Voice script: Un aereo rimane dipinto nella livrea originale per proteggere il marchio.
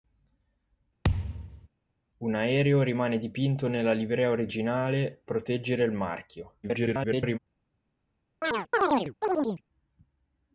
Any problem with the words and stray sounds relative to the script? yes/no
yes